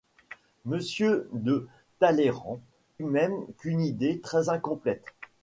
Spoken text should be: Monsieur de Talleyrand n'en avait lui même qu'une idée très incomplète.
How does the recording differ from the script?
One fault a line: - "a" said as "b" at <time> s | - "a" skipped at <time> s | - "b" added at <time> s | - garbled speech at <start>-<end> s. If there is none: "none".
- "n'en avait lui" skipped at 2.6 s